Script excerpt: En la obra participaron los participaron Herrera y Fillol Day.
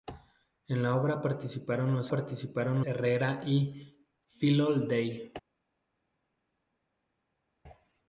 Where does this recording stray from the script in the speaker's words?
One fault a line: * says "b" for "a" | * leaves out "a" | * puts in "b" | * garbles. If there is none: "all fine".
all fine